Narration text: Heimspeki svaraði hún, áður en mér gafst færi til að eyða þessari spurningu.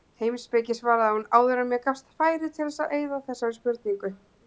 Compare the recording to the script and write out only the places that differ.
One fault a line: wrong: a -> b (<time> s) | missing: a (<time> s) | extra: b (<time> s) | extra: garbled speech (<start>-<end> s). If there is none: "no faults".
no faults